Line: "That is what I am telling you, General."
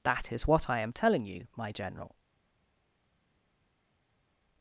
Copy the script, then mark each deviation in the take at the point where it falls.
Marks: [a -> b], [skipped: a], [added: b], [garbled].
"That is what I am telling you, [added: my] General."